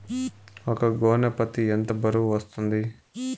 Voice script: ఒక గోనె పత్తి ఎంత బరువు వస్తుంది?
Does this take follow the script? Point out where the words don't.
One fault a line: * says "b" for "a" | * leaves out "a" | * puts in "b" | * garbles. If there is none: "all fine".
all fine